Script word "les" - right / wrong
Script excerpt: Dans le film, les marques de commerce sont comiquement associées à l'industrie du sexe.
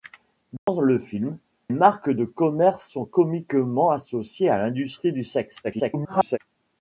wrong